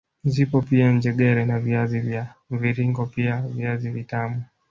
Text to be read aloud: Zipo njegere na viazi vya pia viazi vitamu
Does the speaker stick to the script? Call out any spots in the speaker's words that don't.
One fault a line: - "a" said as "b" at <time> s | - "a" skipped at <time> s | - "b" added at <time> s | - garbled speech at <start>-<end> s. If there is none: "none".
- "pia" added at 0.6 s
- "mviringo" added at 2.5 s